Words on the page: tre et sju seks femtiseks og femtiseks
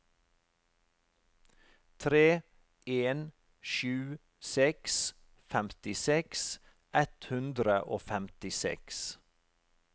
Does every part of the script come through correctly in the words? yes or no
no